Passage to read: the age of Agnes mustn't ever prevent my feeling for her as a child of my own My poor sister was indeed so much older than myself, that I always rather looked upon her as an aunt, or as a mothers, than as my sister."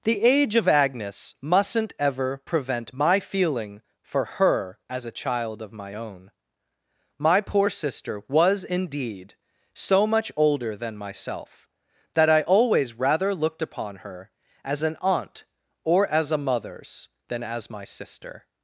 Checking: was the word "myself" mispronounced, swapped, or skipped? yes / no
no